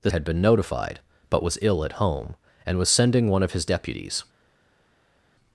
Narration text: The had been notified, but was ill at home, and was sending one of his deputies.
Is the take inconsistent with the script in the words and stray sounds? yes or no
no